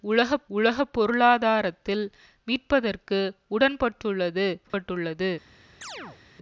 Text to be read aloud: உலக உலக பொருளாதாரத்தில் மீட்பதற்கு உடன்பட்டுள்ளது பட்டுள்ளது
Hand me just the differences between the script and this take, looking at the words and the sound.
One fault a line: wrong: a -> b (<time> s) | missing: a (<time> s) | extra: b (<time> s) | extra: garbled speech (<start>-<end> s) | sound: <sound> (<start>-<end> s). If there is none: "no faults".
sound: dropout (4.7-4.7 s)
sound: chirp (5.8-6.2 s)